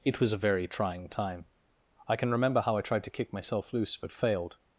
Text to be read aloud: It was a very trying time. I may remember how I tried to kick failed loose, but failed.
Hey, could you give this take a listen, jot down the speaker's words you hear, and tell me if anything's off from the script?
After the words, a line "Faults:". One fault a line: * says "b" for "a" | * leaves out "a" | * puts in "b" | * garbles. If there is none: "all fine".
It was a very trying time. I can remember how I tried to kick myself loose, but failed.
Faults:
* says "can" for "may"
* says "myself" for "failed"